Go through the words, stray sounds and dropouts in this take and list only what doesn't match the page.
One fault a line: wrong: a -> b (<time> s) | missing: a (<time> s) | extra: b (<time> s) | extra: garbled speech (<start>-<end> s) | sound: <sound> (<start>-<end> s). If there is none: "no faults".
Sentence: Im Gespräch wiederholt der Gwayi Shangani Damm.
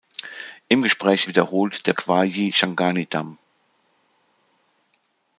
no faults